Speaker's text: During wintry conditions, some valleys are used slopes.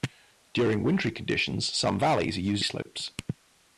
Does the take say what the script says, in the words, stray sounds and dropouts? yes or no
no